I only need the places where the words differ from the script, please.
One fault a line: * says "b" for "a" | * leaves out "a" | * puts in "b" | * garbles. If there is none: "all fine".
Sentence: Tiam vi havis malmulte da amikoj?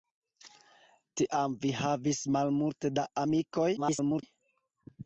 * garbles